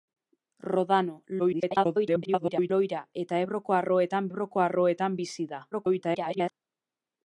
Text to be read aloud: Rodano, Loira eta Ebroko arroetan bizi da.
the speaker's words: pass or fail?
fail